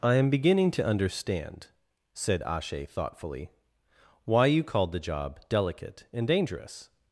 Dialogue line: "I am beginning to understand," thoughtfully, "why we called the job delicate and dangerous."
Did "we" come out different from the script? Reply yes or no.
yes